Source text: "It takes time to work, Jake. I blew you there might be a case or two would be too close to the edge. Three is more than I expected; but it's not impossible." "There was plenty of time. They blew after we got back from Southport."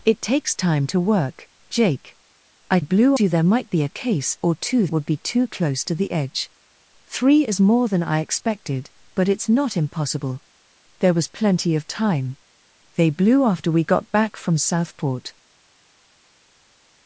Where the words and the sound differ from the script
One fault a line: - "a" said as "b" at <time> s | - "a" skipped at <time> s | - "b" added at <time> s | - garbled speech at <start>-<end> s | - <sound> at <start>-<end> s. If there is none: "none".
none